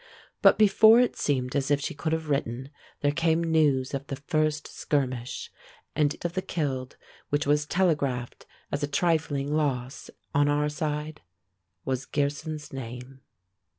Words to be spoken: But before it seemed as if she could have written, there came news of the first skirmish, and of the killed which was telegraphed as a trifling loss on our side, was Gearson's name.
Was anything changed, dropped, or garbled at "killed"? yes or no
no